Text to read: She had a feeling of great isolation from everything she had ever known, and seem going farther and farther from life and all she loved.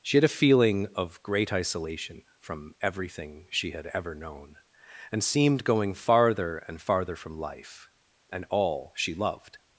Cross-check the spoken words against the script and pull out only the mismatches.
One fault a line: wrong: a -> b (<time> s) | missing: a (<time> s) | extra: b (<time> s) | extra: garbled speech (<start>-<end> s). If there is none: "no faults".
wrong: seem -> seemed (5.2 s)